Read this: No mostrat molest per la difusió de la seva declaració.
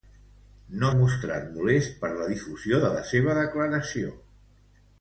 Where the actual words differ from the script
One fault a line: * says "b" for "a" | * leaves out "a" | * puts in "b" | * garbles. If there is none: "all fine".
all fine